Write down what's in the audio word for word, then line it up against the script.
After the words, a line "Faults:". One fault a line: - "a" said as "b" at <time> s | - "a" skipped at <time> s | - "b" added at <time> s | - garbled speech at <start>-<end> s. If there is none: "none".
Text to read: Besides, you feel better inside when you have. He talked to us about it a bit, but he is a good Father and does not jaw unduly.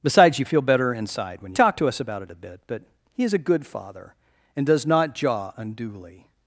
Besides, you feel better inside when talked to us about it a bit, but he is a good Father and does not jaw unduly.
Faults:
- "you have He" skipped at 1.5 s